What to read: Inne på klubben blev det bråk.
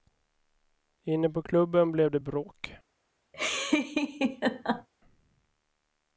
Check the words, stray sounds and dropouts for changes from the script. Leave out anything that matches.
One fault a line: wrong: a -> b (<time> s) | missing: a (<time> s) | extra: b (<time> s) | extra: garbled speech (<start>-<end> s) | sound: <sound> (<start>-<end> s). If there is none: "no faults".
sound: laugh (3.3-4.9 s)